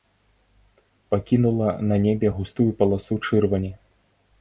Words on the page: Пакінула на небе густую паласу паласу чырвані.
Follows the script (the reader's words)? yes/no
no